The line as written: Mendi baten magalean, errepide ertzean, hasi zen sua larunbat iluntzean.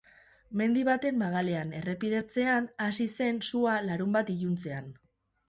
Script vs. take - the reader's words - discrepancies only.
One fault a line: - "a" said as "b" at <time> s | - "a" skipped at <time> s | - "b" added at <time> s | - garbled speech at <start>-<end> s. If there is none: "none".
none